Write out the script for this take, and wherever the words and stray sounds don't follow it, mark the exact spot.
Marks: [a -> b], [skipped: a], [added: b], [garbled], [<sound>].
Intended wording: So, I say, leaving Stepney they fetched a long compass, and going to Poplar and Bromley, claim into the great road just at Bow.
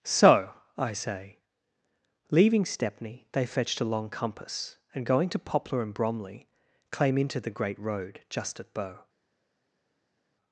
So, I say, leaving Stepney they fetched a long compass, and going to Poplar and Bromley, claim into the great road just at Bow.